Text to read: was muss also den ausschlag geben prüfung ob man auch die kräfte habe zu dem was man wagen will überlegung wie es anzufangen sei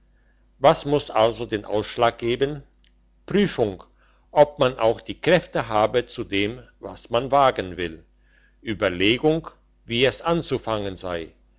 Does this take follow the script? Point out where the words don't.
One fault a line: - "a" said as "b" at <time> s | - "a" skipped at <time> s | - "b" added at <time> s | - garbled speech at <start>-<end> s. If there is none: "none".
none